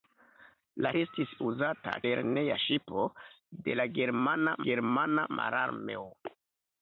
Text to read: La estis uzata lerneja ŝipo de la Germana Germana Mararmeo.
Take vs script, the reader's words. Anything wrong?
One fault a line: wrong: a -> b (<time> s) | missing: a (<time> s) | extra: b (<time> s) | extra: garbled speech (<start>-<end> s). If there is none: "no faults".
no faults